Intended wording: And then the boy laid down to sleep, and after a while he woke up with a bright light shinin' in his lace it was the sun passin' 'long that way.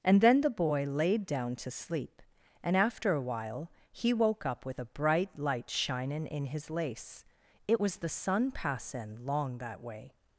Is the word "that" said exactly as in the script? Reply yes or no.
yes